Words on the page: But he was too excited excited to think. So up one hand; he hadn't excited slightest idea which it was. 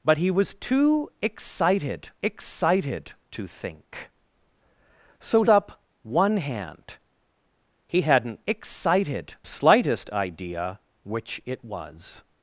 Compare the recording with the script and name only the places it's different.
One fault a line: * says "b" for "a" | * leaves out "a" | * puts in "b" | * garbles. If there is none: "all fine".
all fine